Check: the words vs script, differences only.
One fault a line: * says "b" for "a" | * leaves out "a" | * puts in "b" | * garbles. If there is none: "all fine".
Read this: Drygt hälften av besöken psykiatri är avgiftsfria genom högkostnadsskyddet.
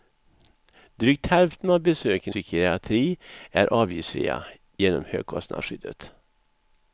all fine